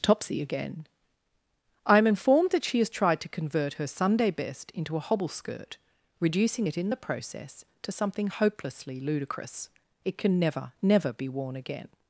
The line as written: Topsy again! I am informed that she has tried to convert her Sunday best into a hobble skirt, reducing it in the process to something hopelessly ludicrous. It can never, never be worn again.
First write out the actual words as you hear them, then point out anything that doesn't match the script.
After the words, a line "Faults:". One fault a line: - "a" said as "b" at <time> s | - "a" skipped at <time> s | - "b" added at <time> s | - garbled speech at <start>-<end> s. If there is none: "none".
Topsy again! I am informed that she has tried to convert her Sunday best into a hobble skirt, reducing it in the process to something hopelessly ludicrous. It can never, never be worn again.
Faults:
none